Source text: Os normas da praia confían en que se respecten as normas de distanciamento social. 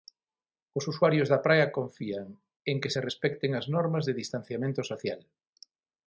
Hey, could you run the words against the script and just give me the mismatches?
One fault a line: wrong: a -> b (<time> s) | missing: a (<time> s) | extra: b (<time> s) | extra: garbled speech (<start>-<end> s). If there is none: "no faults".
wrong: normas -> usuarios (0.9 s)